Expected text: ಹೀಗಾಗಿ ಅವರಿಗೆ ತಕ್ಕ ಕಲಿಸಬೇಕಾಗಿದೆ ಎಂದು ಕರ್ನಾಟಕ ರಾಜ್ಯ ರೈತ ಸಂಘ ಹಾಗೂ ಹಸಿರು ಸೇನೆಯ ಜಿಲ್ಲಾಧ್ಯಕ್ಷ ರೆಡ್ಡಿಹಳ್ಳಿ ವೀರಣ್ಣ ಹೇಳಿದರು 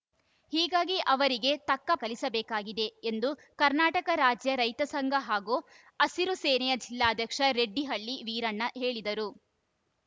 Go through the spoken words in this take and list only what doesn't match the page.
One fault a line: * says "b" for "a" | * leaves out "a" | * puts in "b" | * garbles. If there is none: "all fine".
all fine